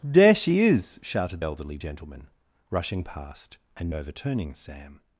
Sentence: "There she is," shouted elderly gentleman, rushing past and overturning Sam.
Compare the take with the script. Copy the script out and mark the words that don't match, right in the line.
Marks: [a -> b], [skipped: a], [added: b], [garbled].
"There she is," shouted elderly gentleman, rushing past and overturning Sam.